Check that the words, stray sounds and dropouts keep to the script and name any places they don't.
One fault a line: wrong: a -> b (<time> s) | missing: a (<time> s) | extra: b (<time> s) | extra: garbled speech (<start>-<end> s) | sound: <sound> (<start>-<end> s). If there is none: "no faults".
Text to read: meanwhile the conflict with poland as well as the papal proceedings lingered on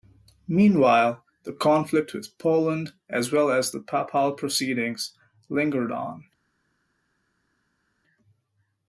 no faults